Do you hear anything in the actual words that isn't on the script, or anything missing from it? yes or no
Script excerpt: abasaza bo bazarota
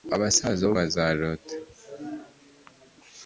no